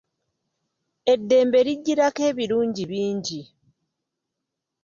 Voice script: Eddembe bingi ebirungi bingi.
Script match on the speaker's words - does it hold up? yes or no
no